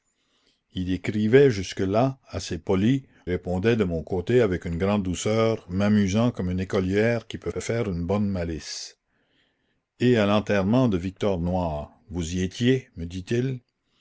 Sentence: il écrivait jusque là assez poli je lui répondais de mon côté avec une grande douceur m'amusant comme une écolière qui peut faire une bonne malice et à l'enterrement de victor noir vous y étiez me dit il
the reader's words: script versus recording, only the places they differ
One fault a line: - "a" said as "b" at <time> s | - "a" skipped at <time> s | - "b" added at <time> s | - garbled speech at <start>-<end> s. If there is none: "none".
- "je lui" skipped at 3.0 s
- "peut" added at 7.5 s